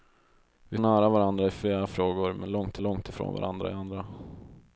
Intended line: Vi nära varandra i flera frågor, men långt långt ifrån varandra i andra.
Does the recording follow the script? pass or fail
pass